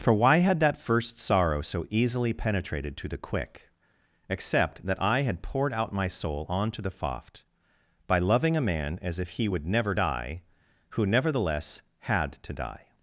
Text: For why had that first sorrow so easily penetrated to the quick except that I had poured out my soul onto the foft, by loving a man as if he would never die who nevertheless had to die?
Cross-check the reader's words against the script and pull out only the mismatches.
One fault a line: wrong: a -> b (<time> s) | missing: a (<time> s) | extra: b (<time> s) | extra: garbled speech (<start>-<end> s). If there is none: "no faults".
no faults